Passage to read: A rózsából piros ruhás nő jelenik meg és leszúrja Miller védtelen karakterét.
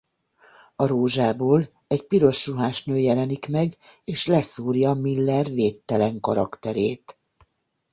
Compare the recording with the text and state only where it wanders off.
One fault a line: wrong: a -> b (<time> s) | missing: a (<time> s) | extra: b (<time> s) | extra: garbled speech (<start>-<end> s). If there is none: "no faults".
extra: egy (1.9 s)